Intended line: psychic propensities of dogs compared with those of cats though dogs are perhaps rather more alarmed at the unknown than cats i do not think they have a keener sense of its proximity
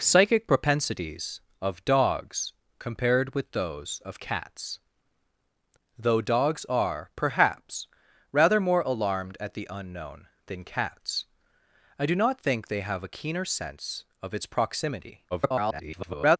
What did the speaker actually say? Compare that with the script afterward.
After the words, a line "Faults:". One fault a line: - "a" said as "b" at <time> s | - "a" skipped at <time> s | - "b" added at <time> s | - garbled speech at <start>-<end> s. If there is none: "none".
psychic propensities of dogs compared with those of cats though dogs are perhaps rather more alarmed at the unknown than cats i do not think they have a keener sense of its proximity [garbled]
Faults:
- garbled speech at 15.3-16.4 s